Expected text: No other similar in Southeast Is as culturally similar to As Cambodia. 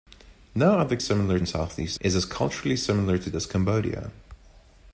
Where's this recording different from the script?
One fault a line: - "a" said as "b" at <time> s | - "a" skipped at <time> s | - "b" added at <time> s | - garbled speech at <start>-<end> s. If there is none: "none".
none